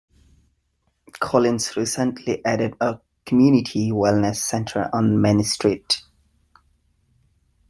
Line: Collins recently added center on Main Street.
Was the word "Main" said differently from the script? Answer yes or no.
no